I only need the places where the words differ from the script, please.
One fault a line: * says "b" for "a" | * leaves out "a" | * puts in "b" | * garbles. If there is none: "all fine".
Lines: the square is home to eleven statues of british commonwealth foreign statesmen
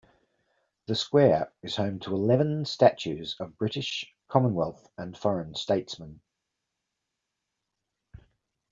* puts in "and"